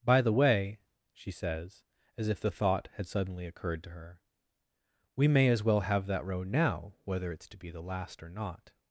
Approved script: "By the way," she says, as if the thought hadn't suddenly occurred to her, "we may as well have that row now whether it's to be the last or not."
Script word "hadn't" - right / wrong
wrong